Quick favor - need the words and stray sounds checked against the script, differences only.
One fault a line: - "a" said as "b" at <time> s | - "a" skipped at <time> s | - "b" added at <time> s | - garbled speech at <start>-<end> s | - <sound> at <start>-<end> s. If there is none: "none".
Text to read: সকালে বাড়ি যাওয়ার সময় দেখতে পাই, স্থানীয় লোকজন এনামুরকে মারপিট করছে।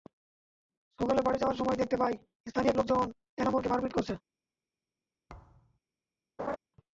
- thud at 5.3-5.8 s
- laugh at 6.4-6.6 s